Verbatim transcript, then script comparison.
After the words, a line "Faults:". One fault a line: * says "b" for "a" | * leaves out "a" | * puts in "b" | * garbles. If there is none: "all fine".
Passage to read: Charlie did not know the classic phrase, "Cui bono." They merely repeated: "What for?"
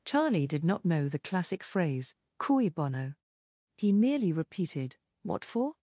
Charlie did not know the classic phrase, "Cui bono." He merely repeated: "What for?"
Faults:
* says "He" for "They"